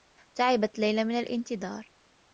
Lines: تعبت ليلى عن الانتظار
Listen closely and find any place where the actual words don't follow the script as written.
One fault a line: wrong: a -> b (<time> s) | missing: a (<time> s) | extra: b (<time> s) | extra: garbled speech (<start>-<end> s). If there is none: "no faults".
wrong: عن -> من (1.0 s)